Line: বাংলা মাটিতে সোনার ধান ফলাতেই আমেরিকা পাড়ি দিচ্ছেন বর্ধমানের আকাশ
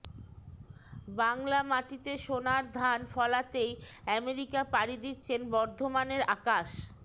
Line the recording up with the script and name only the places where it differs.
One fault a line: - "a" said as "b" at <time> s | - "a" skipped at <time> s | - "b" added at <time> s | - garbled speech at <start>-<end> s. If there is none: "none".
none